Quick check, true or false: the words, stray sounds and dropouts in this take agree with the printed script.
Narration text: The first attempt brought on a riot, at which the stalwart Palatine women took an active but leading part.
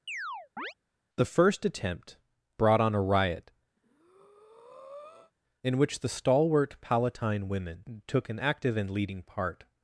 false